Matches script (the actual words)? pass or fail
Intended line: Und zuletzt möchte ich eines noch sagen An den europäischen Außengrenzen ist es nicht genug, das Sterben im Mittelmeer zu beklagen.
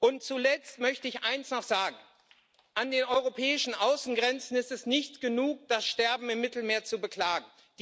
pass